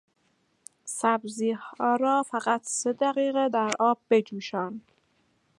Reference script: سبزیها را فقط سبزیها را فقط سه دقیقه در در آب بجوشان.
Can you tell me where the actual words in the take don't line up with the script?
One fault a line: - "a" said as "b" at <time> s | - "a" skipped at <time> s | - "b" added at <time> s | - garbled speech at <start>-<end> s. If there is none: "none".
- "سبزیها را فقط" skipped at 2.6 s
- "در" skipped at 3.7 s